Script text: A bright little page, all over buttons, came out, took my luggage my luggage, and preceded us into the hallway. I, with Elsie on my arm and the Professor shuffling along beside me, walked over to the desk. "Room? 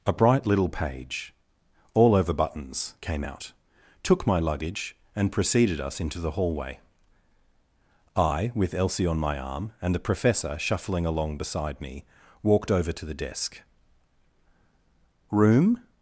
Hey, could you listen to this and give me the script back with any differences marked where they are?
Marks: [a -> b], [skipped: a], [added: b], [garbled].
A bright little page, all over buttons, came out, took my luggage [skipped: my luggage,] and preceded us into the hallway. I, with Elsie on my arm and the Professor shuffling along beside me, walked over to the desk. "Room?